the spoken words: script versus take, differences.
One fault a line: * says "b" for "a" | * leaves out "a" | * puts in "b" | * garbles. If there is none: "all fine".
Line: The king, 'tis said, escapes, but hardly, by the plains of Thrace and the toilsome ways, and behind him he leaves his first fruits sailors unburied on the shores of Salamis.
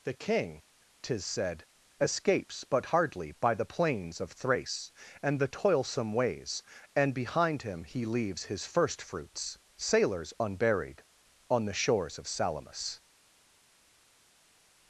all fine